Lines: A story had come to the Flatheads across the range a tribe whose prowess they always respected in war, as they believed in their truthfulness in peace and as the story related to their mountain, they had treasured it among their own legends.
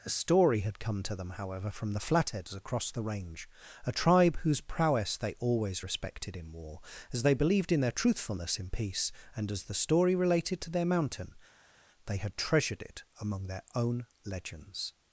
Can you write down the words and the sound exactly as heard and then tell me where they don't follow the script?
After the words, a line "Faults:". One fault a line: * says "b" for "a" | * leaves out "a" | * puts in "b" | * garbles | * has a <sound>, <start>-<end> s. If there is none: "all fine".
A story had come to them, however, from the Flatheads across the range a tribe whose prowess they always respected in war, as they believed in their truthfulness in peace and as the story related to their mountain, they had treasured it among their own legends.
Faults:
* puts in "them however from"